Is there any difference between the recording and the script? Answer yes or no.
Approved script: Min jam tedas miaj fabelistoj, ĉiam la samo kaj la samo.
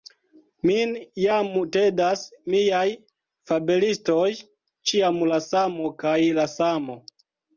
no